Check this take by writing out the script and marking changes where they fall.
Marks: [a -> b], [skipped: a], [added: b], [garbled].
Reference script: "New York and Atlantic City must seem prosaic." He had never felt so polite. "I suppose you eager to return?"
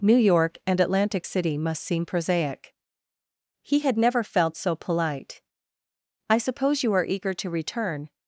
"New York and Atlantic City must seem prosaic." He had never felt so polite. "I suppose you [added: are] eager to return?"